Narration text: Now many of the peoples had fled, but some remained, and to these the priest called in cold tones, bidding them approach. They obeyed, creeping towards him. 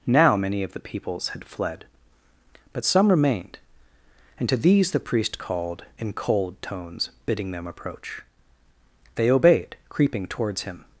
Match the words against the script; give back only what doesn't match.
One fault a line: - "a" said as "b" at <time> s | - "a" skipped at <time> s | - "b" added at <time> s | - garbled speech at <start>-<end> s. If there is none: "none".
none